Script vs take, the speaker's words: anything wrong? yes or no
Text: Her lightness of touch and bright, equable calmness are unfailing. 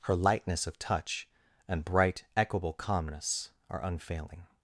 no